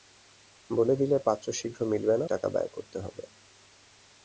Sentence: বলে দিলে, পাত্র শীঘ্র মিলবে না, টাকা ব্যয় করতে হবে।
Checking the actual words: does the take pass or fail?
pass